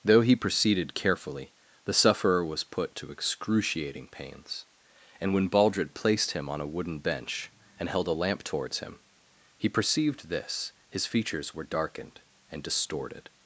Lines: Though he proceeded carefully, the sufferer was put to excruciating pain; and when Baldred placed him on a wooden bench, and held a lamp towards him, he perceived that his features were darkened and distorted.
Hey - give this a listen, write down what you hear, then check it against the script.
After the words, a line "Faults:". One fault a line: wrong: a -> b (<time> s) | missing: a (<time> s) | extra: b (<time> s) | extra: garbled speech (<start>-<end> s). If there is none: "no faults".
Though he proceeded carefully, the sufferer was put to excruciating pains; and when Baldred placed him on a wooden bench, and held a lamp towards him, he perceived this his features were darkened and distorted.
Faults:
wrong: pain -> pains (4.1 s)
wrong: that -> this (10.3 s)